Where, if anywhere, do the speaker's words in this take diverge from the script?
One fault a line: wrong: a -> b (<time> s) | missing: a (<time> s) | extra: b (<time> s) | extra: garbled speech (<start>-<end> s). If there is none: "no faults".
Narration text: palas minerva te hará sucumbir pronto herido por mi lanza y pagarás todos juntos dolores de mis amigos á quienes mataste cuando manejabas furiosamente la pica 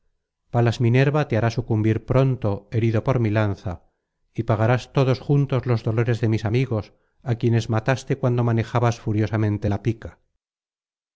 extra: los (5.7 s)